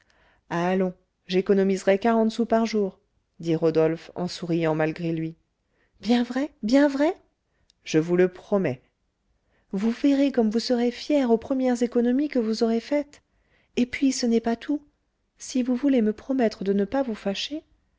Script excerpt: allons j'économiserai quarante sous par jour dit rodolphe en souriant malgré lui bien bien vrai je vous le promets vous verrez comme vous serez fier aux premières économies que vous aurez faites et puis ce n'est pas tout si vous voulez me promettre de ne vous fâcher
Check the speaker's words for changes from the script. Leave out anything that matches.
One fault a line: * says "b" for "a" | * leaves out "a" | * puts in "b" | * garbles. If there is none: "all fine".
* puts in "vrai"
* puts in "pas"